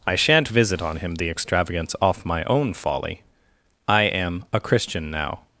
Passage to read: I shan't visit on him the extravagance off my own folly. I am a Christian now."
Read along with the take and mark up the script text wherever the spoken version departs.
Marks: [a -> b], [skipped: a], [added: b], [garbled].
I shan't visit on him the extravagance off my own folly. I am a Christian now."